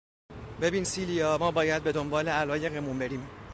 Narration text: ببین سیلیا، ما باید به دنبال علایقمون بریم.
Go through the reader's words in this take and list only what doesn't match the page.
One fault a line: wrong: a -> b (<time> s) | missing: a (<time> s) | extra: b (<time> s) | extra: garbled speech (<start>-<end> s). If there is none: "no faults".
no faults